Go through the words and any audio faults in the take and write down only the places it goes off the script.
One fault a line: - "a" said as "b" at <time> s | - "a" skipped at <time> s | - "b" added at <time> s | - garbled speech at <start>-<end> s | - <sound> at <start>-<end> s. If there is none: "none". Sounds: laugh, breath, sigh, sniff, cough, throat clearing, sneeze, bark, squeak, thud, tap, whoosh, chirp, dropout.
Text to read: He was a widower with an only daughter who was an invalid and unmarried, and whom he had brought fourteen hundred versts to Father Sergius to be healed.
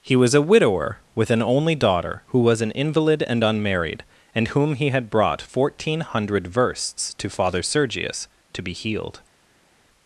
none